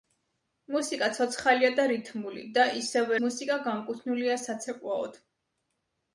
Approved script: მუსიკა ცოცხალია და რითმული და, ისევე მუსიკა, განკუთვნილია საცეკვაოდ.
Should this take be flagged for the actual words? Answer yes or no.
no